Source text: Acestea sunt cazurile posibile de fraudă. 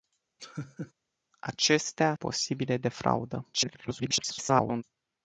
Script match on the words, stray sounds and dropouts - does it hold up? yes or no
no